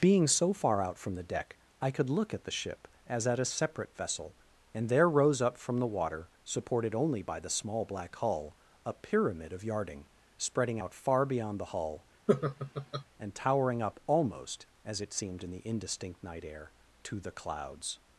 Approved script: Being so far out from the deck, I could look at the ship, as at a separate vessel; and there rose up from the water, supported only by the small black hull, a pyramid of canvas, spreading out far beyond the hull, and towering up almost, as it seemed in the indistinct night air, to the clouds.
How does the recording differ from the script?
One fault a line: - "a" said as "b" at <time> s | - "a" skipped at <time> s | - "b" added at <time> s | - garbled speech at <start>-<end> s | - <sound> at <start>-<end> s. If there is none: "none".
- "canvas" said as "yarding" at 9.6 s
- laugh at 12.3-13.0 s